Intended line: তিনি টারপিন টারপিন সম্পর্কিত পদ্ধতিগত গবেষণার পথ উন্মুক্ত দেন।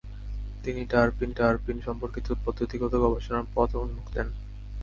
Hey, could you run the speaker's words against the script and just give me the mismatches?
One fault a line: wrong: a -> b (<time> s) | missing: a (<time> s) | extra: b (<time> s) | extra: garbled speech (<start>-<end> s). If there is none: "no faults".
no faults